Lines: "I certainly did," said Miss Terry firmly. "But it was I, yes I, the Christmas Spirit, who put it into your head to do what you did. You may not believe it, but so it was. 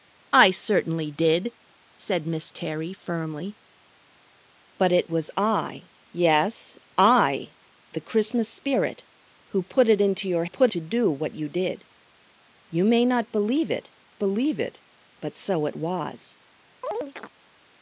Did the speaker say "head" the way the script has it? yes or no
no